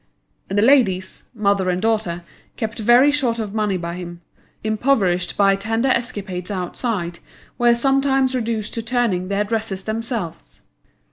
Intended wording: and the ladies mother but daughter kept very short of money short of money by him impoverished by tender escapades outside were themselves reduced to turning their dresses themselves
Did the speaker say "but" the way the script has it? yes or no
no